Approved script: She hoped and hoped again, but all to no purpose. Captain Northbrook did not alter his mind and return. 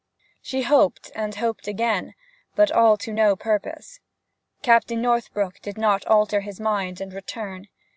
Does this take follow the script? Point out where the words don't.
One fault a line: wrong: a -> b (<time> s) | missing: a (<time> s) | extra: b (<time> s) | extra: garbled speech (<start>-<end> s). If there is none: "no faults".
no faults